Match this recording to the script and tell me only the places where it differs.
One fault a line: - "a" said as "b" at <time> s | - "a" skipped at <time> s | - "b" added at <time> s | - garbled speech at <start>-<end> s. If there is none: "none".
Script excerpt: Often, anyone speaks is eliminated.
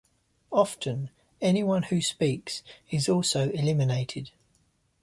- "who" added at 1.8 s
- "also" added at 3.1 s